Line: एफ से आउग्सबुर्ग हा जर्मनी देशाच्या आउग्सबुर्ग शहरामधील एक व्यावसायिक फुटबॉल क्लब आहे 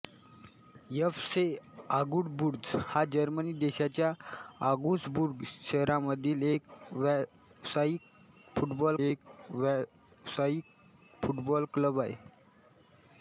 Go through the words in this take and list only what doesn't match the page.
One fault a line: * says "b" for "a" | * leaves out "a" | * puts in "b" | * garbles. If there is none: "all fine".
* puts in "एक व्यावसायिक फुटबॉल"